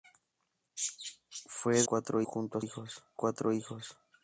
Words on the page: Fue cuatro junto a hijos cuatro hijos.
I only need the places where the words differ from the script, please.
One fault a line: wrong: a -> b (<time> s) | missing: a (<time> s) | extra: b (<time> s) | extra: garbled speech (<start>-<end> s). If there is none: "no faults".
no faults